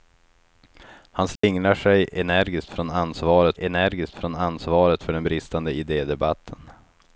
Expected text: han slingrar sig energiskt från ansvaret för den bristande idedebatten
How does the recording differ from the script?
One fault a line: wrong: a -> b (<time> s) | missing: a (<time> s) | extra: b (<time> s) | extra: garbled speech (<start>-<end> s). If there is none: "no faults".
extra: energiskt från ansvaret (3.6 s)